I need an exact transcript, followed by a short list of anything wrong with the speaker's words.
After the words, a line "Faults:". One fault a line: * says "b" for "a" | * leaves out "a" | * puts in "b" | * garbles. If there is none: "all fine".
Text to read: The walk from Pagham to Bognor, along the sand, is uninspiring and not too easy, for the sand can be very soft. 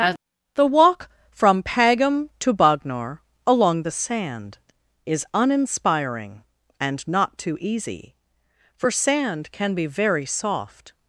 The walk from Pagham to Bognor, along the sand, is uninspiring and not too easy, for sand can be very soft.
Faults:
* leaves out "the"